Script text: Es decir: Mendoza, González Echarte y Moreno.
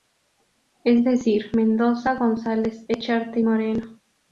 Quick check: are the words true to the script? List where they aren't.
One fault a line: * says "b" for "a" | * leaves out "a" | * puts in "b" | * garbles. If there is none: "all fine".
all fine